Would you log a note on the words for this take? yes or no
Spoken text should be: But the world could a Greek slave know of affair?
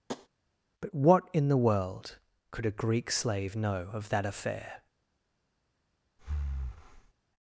yes